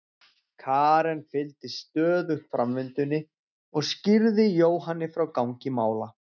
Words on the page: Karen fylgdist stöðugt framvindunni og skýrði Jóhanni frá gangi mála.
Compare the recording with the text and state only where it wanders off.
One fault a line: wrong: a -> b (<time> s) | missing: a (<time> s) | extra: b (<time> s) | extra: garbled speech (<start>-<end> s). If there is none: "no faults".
no faults